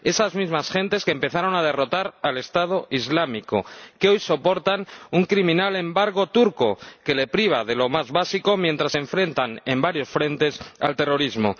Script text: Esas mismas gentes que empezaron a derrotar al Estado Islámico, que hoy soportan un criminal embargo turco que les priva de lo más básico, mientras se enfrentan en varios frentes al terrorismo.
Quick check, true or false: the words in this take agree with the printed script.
true